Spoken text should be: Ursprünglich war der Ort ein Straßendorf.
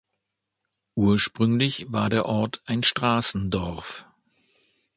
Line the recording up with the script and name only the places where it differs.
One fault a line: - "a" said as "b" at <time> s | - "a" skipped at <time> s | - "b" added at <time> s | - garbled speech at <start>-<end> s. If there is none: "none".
none